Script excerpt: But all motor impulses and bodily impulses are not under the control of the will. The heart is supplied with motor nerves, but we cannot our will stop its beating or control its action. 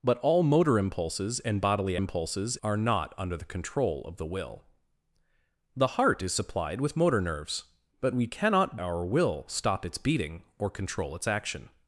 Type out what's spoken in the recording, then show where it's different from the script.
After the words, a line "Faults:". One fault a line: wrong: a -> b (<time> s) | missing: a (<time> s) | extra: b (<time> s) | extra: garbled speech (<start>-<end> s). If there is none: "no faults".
But all motor impulses and bodily impulses are not under the control of the will. The heart is supplied with motor nerves, but we cannot our will stop its beating or control its action.
Faults:
no faults